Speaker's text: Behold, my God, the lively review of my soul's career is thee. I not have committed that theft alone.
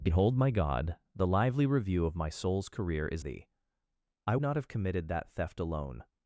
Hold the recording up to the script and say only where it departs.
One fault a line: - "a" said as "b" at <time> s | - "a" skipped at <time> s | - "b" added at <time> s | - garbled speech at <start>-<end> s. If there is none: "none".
none